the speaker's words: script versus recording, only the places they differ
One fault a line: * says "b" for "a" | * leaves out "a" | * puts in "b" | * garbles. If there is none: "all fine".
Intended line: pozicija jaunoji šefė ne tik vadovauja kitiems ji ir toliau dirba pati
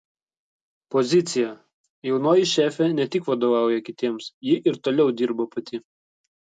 all fine